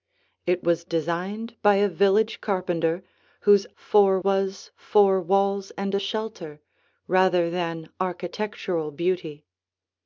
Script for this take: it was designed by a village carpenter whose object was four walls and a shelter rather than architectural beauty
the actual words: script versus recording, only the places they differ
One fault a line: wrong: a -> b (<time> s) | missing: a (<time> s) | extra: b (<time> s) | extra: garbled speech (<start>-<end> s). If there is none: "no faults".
wrong: object -> four (3.7 s)